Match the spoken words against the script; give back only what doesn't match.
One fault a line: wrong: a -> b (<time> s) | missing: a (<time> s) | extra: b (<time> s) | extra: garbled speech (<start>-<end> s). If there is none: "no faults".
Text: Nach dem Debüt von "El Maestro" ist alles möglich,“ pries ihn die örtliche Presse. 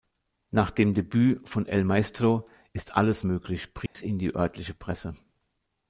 no faults